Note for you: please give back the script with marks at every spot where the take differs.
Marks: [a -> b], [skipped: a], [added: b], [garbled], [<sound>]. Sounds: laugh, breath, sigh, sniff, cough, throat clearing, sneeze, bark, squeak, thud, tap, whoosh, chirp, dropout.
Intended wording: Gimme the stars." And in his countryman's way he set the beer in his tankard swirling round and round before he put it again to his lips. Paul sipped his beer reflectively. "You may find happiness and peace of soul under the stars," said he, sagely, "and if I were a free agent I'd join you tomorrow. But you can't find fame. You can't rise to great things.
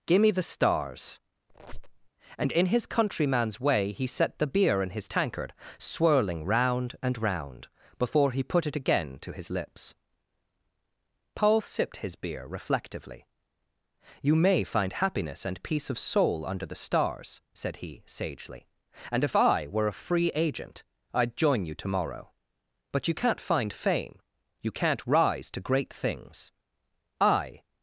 Gimme the stars." [squeak] And in his countryman's way he set the beer in his tankard swirling round and round before he put it again to his lips. Paul sipped his beer reflectively. "You may find happiness and peace of soul under the stars," said he, sagely, "and if I were a free agent I'd join you tomorrow. But you can't find fame. You can't rise to great things. [added: I]